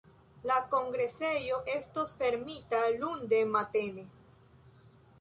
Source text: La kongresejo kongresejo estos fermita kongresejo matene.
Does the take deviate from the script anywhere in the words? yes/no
yes